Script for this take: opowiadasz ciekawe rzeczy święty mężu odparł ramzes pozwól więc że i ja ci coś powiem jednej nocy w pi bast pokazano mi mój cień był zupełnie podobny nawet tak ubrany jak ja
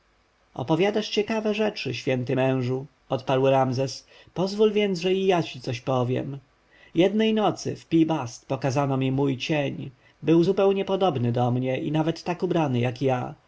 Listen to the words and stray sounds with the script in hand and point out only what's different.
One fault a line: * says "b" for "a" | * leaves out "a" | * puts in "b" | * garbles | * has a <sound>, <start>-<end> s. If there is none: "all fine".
* puts in "do mnie i"